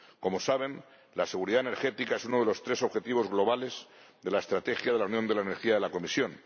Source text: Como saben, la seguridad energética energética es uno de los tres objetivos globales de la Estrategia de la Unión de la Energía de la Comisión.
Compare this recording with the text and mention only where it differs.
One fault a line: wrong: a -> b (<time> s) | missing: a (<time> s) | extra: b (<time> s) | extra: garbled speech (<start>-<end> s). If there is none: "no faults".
missing: energética (2.1 s)